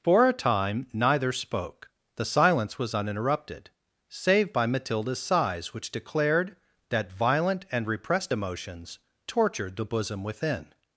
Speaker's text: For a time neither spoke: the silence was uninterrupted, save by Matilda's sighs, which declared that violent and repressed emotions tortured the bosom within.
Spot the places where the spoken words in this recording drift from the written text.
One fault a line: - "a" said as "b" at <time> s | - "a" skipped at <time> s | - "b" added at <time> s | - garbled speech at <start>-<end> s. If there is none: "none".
none